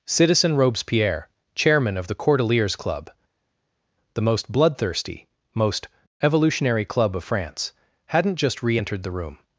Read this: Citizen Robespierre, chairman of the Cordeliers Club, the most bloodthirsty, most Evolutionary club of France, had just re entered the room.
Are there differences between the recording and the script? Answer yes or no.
yes